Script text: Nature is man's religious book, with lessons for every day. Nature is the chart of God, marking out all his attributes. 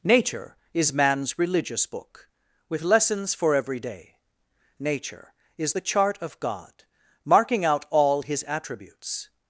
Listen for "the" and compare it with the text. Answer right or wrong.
right